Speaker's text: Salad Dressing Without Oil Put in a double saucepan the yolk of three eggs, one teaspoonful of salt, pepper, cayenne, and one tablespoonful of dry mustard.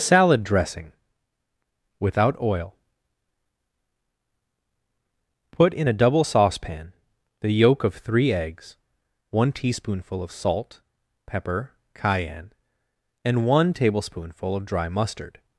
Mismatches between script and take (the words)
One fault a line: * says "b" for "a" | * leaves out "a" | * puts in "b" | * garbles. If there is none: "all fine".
all fine